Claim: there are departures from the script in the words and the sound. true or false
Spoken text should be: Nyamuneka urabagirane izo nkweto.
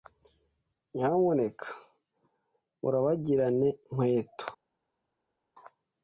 true